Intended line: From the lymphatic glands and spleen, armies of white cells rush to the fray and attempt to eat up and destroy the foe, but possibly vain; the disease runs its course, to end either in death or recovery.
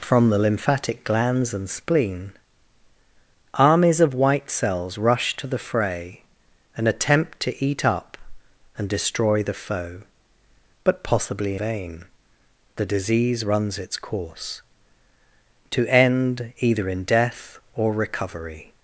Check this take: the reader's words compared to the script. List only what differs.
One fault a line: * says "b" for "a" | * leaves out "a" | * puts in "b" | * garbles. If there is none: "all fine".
all fine